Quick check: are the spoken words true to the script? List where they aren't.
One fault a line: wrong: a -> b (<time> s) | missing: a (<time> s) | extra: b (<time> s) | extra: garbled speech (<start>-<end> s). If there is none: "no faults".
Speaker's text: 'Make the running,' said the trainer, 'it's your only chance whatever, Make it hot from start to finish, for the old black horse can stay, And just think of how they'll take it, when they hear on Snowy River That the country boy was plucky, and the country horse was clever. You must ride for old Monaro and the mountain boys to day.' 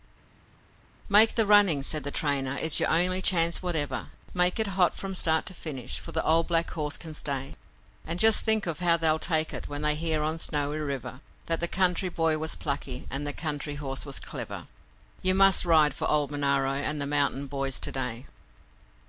no faults